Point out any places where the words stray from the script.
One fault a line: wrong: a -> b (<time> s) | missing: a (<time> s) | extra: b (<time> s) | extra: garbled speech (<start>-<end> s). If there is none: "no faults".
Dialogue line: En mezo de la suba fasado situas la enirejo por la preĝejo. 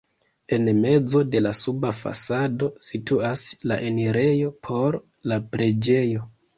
no faults